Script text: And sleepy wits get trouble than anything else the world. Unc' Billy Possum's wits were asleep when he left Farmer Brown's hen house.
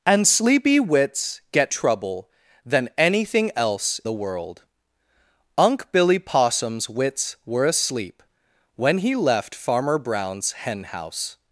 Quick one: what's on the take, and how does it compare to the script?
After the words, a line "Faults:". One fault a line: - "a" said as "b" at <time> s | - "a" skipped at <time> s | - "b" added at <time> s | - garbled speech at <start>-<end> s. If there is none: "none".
And sleepy wits get trouble than anything else the world. Unc' Billy Possum's wits were asleep when he left Farmer Brown's hen house.
Faults:
none